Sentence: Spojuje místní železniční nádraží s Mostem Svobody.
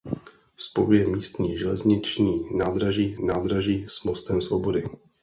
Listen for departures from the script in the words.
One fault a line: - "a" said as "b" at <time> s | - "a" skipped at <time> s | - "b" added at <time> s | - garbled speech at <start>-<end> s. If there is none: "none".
- "nádraží" added at 3.3 s